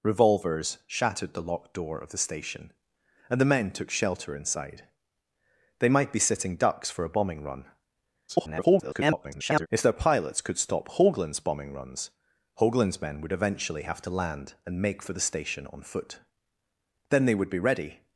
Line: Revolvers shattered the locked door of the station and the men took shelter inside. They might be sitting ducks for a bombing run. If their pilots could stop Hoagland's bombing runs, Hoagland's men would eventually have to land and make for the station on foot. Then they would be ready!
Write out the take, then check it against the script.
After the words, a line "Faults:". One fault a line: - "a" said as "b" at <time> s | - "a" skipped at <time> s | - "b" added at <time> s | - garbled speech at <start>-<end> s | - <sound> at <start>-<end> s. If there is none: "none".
Revolvers shattered the locked door of the station and the men took shelter inside. They might be sitting ducks for a bombing run. [garbled] If their pilots could stop Hoagland's bombing runs, Hoagland's men would eventually have to land and make for the station on foot. Then they would be ready!
Faults:
- garbled speech at 8.3-9.7 s